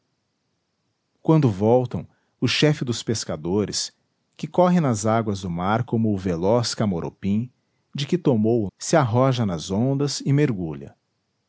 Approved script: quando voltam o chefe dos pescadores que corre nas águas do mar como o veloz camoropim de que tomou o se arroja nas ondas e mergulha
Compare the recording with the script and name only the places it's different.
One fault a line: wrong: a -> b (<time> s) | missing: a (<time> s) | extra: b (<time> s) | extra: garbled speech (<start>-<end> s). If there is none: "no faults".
no faults